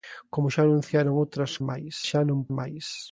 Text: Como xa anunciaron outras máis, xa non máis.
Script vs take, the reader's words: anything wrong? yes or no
no